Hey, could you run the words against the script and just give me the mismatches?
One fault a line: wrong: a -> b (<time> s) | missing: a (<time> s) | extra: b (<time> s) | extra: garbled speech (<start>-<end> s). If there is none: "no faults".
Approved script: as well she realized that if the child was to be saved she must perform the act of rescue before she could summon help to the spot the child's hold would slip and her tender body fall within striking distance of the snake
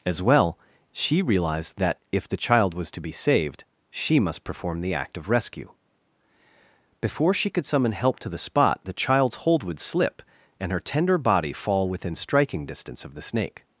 no faults